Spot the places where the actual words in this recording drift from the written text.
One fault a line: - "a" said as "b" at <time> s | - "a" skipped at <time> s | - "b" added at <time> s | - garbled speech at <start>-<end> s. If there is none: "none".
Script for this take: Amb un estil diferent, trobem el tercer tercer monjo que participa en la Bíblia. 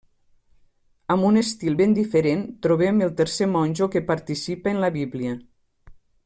- "ben" added at 1.8 s
- "tercer" skipped at 3.5 s